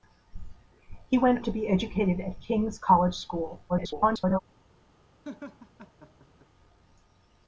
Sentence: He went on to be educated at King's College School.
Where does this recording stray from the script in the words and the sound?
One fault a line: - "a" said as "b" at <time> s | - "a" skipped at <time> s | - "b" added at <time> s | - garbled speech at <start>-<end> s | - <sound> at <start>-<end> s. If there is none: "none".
- "on" skipped at 1.4 s
- garbled speech at 3.7-4.4 s
- laugh at 5.2-6.5 s